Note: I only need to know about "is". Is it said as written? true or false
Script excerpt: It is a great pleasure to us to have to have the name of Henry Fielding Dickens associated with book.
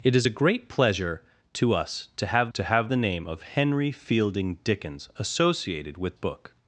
true